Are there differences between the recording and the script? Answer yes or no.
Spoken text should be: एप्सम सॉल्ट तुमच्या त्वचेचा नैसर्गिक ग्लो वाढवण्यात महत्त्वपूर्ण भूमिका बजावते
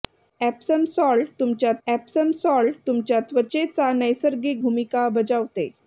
yes